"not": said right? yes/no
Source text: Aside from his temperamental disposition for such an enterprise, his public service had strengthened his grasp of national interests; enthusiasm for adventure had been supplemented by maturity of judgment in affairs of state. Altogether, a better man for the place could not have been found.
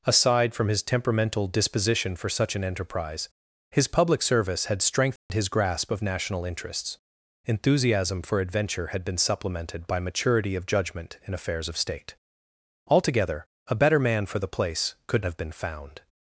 no